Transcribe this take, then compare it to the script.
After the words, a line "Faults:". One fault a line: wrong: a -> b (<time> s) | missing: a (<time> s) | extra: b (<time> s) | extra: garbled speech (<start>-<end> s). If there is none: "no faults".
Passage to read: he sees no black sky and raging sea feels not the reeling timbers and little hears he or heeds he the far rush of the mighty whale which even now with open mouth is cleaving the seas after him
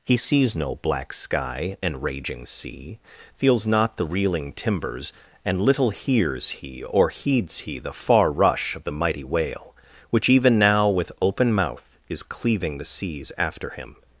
he sees no black sky and raging sea feels not the reeling timbers and little hears he or heeds he the far rush of the mighty whale which even now with open mouth is cleaving the seas after him
Faults:
no faults